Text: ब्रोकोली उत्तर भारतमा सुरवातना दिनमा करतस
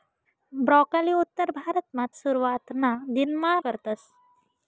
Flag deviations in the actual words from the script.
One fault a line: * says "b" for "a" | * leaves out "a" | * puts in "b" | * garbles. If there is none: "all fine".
all fine